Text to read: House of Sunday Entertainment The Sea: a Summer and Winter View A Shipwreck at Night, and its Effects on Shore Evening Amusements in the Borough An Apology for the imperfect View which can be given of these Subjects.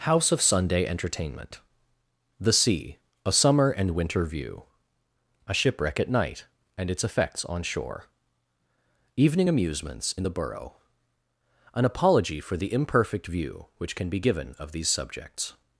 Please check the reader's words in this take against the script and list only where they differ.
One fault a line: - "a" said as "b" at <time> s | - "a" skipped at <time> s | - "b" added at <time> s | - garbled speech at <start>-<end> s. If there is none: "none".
none